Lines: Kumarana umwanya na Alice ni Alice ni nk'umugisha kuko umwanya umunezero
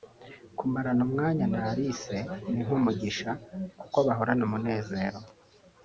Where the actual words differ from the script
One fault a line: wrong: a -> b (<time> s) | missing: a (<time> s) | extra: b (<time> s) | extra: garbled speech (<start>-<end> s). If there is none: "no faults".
missing: Alice ni (2.6 s)
wrong: umwanya -> bahorana (4.1 s)